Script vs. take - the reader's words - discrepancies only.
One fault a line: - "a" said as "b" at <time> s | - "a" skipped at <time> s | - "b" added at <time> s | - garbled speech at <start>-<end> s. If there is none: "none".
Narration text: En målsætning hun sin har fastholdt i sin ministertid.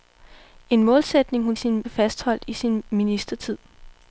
none